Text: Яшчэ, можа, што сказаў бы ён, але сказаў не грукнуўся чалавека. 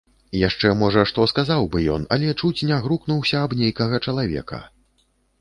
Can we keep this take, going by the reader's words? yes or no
no